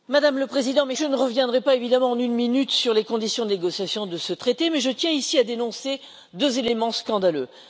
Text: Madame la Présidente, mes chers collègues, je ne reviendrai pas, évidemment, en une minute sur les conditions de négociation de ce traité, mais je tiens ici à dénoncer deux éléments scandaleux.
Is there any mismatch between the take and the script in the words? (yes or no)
yes